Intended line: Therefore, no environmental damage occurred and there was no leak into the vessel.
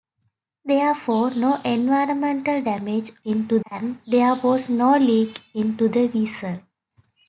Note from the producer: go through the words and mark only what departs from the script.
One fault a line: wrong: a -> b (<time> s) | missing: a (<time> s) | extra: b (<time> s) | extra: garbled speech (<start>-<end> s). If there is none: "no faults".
wrong: occurred -> into (3.3 s)